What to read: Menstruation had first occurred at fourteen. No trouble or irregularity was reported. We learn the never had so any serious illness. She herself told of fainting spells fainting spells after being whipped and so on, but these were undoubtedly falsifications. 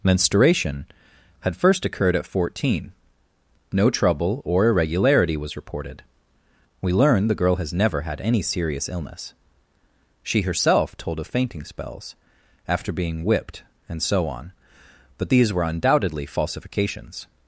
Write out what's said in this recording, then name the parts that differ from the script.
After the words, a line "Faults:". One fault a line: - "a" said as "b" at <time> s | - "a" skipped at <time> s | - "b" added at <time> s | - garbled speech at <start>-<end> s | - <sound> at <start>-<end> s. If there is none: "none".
Menstruation had first occurred at fourteen. No trouble or irregularity was reported. We learn the girl has never had any serious illness. She herself told of fainting spells after being whipped and so on, but these were undoubtedly falsifications.
Faults:
- "girl has" added at 7.3 s
- "so" skipped at 8.2 s
- "fainting spells" skipped at 12.1 s